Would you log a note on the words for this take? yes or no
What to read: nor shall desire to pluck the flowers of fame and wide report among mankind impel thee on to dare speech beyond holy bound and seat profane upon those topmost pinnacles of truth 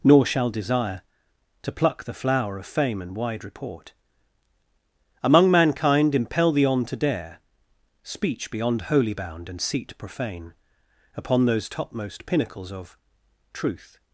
yes